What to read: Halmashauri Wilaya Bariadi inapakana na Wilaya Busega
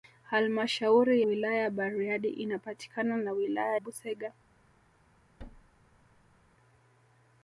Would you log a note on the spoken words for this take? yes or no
no